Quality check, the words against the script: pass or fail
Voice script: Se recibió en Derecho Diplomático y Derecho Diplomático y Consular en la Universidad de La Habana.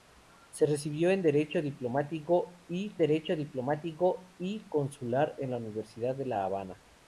pass